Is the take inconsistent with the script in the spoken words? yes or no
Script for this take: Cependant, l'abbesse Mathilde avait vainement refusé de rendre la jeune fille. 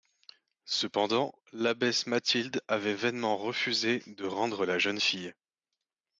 no